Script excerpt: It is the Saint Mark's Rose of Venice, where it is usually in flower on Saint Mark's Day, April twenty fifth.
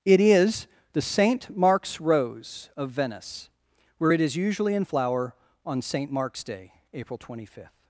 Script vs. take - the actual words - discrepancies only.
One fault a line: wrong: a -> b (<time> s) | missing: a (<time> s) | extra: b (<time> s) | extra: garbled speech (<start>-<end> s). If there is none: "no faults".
no faults